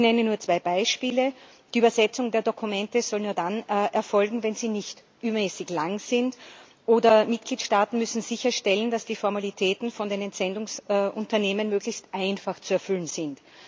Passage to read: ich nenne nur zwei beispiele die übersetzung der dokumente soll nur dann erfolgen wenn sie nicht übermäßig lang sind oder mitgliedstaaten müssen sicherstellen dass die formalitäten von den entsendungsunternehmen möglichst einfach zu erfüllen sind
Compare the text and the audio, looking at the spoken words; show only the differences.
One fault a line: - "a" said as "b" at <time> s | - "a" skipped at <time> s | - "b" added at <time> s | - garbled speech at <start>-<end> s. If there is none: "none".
none